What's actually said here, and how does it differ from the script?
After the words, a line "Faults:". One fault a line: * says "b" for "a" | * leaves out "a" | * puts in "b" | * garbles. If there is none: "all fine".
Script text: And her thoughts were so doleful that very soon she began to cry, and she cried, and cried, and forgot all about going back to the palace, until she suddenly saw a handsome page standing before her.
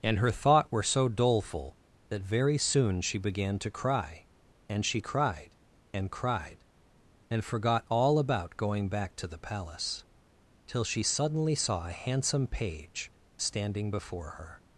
And her thought were so doleful that very soon she began to cry, and she cried, and cried, and forgot all about going back to the palace, till she suddenly saw a handsome page standing before her.
Faults:
* says "thought" for "thoughts"
* says "till" for "until"